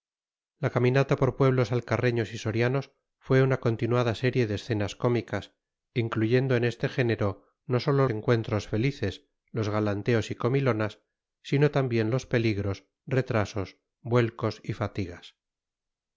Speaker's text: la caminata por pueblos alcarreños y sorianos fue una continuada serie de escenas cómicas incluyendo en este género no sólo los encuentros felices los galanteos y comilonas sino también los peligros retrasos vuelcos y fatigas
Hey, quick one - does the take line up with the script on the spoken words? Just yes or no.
no